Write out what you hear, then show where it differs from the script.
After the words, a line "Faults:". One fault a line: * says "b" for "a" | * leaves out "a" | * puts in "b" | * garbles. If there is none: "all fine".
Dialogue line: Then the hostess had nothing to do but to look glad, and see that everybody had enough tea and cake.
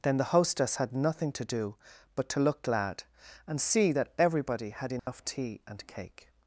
Then the hostess had nothing to do but to look glad, and see that everybody had enough tea and cake.
Faults:
all fine